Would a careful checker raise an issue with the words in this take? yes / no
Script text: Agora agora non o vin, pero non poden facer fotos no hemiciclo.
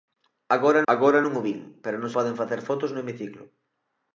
no